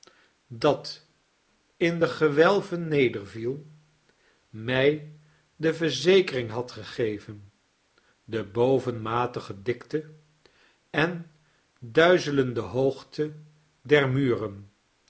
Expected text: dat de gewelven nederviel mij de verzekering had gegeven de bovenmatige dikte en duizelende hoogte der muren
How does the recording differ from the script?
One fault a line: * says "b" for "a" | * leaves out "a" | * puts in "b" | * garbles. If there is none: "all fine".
* puts in "in"